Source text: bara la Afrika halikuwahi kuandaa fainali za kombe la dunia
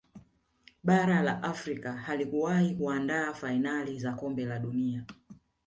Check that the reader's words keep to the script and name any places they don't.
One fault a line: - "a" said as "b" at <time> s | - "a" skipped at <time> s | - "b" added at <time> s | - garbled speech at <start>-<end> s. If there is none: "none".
none